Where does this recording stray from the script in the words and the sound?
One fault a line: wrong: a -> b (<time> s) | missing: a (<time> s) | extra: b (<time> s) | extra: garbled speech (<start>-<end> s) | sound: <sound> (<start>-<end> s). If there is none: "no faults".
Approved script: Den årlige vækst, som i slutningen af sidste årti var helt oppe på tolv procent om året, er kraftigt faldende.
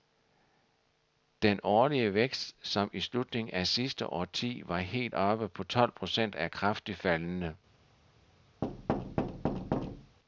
missing: om året (6.4 s)
sound: thud (8.6-10.2 s)